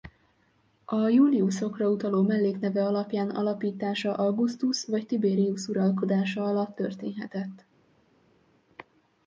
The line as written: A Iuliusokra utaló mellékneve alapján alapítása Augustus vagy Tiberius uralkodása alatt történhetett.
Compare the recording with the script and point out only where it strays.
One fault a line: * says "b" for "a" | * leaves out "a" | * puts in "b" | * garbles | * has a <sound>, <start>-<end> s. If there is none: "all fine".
all fine